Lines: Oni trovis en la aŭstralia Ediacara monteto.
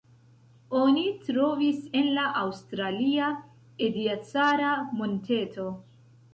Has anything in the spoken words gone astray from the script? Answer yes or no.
no